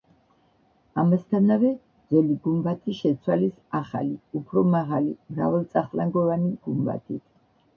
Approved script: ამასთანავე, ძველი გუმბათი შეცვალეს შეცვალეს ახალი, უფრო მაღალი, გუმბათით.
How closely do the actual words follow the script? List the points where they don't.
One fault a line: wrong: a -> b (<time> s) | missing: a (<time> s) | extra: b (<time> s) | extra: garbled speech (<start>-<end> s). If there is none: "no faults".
missing: შეცვალეს (3.6 s)
extra: მრავალწახნაგოვანი (5.4 s)